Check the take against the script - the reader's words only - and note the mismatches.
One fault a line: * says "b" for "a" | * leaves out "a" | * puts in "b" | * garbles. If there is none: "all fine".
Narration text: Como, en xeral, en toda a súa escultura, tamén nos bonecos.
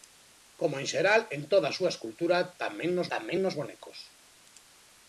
* puts in "tamén nos"